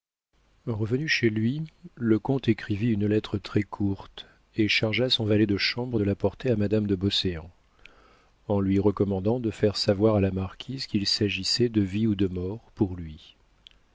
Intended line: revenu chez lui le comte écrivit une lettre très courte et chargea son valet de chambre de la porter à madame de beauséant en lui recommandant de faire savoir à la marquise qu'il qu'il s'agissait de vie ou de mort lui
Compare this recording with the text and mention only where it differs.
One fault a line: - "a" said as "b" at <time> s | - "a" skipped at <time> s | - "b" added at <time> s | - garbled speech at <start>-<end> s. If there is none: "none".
- "qu'il" skipped at 11.0 s
- "pour" added at 12.7 s